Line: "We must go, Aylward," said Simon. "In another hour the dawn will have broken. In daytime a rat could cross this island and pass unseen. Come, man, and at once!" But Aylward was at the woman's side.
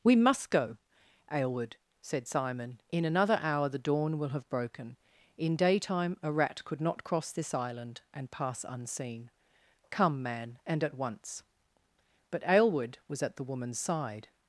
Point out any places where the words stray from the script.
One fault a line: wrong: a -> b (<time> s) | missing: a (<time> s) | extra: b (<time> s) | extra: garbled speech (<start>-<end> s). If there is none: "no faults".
extra: not (6.8 s)